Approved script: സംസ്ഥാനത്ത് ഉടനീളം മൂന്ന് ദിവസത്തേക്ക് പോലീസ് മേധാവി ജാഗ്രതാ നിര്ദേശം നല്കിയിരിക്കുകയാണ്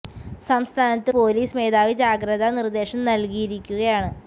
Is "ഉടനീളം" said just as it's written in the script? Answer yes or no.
no